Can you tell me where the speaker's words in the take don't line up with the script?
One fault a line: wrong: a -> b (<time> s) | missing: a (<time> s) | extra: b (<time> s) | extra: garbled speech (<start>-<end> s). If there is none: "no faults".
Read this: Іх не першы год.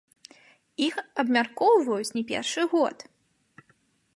extra: абмяркоўваюць (1.2 s)